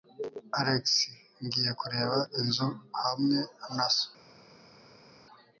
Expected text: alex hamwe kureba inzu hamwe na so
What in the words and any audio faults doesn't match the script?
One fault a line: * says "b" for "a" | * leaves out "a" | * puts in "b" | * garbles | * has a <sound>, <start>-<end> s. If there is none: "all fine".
* says "ngiye" for "hamwe"